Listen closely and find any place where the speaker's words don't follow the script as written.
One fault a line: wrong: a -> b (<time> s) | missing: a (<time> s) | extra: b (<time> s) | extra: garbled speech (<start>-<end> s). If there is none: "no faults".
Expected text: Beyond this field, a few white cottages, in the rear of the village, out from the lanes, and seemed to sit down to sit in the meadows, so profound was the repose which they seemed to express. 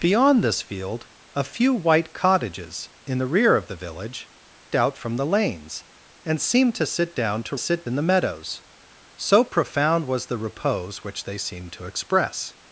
no faults